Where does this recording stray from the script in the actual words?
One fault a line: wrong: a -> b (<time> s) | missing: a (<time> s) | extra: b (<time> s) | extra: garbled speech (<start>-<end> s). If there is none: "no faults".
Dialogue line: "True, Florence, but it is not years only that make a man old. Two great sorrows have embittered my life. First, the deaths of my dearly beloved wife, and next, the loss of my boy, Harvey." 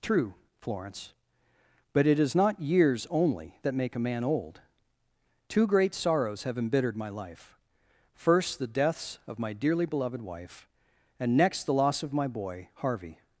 no faults